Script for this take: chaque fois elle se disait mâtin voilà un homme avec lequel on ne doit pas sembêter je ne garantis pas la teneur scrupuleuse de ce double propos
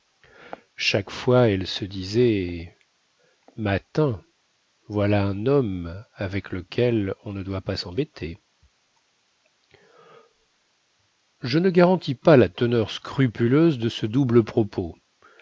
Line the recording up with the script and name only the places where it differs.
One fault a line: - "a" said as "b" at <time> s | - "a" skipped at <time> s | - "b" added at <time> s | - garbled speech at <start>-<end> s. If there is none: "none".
none